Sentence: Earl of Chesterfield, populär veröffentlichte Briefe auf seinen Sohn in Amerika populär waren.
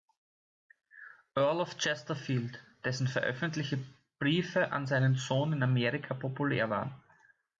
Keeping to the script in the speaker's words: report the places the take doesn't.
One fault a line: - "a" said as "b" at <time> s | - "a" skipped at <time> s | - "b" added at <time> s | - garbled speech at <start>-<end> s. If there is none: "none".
- "populär" said as "dessen" at 2.8 s
- "auf" said as "an" at 4.7 s